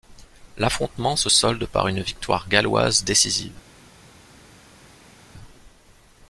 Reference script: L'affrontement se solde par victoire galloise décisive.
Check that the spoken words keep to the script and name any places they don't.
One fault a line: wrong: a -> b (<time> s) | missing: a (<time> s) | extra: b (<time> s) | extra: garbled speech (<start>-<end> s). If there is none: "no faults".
extra: une (1.9 s)